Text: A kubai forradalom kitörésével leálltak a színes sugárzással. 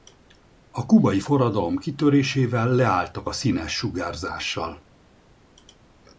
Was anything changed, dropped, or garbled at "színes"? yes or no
no